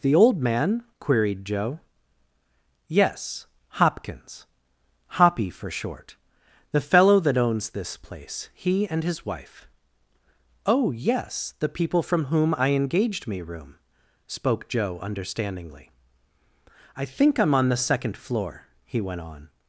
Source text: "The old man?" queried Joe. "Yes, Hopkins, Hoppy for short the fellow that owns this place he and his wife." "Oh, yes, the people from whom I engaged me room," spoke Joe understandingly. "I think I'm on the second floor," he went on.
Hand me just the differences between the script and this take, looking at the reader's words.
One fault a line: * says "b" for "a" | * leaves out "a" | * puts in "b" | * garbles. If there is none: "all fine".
all fine